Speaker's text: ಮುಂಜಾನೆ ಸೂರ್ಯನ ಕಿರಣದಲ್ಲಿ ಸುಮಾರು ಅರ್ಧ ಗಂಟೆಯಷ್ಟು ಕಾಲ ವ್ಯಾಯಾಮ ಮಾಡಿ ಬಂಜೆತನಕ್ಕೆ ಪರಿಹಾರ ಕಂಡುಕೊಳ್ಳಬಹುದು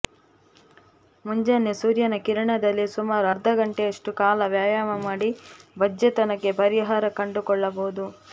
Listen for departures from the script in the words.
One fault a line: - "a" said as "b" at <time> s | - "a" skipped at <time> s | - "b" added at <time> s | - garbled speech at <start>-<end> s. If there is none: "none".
none